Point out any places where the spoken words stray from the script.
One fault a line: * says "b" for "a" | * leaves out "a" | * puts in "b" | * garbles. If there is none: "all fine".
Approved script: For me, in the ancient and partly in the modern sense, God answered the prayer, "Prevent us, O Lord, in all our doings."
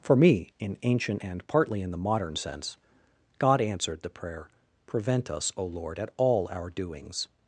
* leaves out "the"
* says "at" for "in"